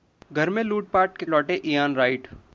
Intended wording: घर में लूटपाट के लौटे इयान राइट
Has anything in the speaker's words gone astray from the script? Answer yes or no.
no